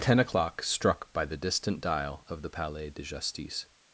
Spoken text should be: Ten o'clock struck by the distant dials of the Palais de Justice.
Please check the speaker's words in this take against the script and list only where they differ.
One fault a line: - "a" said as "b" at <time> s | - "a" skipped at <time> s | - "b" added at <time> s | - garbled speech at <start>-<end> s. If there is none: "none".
- "dials" said as "dial" at 1.8 s